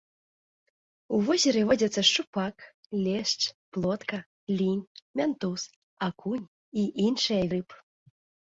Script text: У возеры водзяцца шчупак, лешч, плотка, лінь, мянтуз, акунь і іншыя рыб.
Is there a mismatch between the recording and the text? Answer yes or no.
no